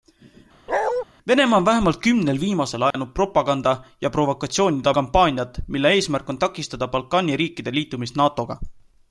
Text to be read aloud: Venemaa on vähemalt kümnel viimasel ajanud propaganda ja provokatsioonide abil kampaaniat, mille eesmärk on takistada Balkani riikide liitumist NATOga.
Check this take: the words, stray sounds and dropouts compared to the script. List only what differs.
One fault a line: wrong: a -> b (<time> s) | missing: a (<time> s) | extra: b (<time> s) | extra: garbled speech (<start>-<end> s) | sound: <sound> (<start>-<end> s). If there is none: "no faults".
sound: bark (0.7-1.0 s)
sound: dropout (2.9-2.9 s)
missing: abil (4.9 s)